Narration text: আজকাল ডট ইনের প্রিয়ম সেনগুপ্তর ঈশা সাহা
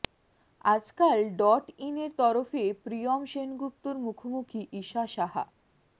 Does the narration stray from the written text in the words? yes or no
yes